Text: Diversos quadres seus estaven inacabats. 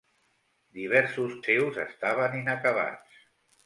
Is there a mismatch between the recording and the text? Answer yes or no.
yes